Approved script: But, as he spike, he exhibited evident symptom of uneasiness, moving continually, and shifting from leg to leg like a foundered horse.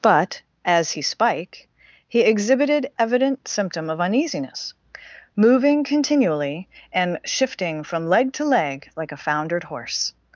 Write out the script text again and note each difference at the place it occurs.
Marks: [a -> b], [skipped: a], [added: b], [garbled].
But, as he spike, he exhibited evident symptom of uneasiness, moving continually, and shifting from leg to leg like a foundered horse.